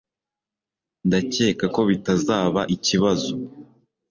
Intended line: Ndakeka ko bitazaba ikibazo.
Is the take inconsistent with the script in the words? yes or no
no